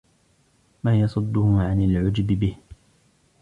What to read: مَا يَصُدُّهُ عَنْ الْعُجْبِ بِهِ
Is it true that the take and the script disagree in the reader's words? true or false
false